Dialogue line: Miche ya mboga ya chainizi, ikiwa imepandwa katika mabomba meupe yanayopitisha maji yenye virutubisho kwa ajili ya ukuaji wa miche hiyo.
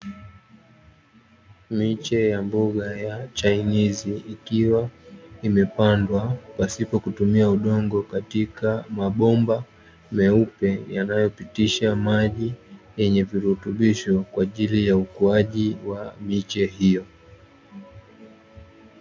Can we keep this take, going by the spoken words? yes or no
no